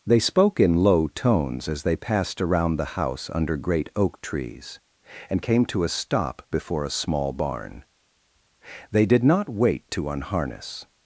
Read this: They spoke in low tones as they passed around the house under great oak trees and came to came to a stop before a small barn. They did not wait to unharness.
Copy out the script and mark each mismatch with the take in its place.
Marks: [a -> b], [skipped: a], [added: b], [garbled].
They spoke in low tones as they passed around the house under great oak trees and came to [skipped: came to] a stop before a small barn. They did not wait to unharness.